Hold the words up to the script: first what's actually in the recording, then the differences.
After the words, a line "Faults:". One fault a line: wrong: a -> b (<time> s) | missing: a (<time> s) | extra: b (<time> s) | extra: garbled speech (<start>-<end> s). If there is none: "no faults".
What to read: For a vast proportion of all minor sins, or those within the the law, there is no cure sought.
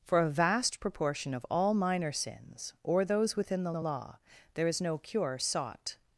For a vast proportion of all minor sins, or those within the the law, there is no cure sought.
Faults:
no faults